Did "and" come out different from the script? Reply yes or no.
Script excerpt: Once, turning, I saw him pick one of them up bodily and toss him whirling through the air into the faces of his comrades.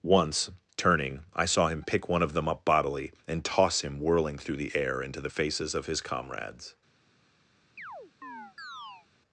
no